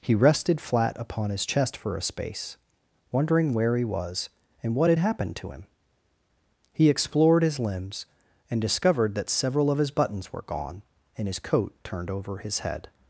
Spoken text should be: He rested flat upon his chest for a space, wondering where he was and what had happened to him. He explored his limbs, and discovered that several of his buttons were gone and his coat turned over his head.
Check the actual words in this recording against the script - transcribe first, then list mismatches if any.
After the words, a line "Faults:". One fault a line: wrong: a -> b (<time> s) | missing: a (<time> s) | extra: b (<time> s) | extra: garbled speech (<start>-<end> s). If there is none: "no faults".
He rested flat upon his chest for a space, wondering where he was and what had happened to him. He explored his limbs, and discovered that several of his buttons were gone and his coat turned over his head.
Faults:
no faults